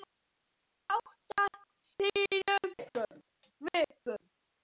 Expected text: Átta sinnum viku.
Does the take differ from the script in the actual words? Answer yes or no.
no